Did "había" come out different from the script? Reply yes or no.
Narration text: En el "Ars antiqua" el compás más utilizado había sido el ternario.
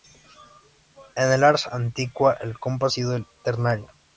yes